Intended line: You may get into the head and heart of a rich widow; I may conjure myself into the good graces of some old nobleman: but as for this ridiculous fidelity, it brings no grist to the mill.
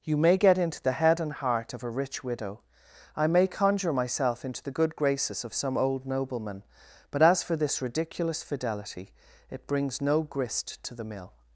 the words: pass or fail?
pass